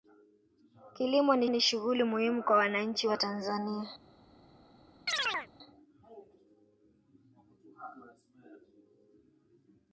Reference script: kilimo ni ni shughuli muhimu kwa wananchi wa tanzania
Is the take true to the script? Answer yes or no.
yes